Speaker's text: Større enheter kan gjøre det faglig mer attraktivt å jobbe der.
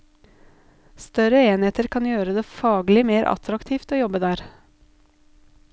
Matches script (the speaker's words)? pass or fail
pass